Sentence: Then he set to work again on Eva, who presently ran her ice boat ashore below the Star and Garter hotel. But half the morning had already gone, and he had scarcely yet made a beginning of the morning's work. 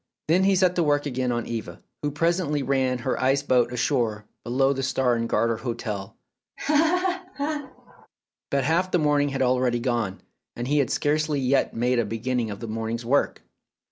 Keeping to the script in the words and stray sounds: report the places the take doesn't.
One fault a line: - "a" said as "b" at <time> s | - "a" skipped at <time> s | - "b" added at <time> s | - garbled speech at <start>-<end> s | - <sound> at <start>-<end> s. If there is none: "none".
- laugh at 6.6-8.1 s